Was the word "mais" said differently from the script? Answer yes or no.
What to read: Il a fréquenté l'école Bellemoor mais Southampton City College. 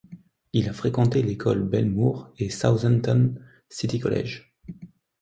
yes